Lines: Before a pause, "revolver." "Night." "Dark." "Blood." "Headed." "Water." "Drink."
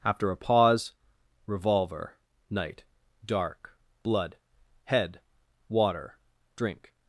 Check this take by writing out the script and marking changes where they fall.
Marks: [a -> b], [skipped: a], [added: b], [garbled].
[Before -> After] a pause, "revolver." "Night." "Dark." "Blood." ["Headed." -> Head] "Water." "Drink."